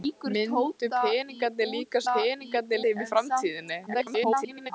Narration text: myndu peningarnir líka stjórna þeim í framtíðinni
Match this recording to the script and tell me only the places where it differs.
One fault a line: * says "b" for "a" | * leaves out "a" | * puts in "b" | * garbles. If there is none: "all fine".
* says "peningarnir" for "stjórna"
* garbles